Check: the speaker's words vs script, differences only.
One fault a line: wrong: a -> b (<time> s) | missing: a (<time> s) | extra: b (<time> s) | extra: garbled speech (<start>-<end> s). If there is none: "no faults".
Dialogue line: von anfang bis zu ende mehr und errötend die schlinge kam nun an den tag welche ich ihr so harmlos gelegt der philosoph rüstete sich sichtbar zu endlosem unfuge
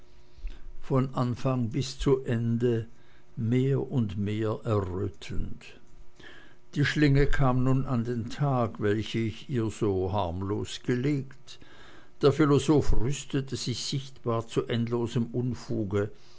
extra: mehr (4.2 s)